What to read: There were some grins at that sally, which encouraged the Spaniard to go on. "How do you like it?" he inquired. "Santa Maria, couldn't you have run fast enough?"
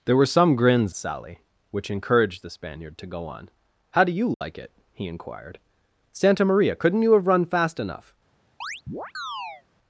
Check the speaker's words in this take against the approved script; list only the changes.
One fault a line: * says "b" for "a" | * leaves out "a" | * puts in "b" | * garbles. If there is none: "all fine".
* leaves out "at that"